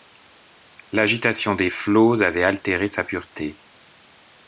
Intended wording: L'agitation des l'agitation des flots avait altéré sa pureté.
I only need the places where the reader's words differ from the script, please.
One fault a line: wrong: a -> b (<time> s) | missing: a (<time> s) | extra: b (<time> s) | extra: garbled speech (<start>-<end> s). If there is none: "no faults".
missing: l'agitation des (1.7 s)